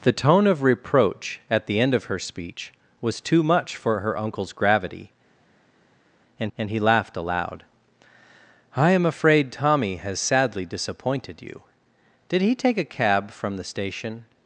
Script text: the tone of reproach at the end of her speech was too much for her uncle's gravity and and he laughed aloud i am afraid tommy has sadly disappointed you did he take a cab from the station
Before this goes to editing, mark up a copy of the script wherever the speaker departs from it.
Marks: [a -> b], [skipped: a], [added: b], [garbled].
the tone of reproach at the end of her speech was too much for her uncle's gravity and and he laughed aloud i am afraid tommy has sadly disappointed you did he take a cab from the station